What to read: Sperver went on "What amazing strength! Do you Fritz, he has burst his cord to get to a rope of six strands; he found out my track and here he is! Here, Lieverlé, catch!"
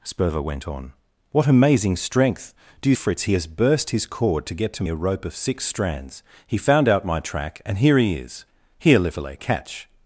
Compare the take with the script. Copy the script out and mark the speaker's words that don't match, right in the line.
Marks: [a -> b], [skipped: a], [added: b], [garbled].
Sperver went on "What amazing strength! Do you Fritz, he has burst his cord to get to a rope of six strands; he found out my track and here he is! Here, Lieverlé, catch!"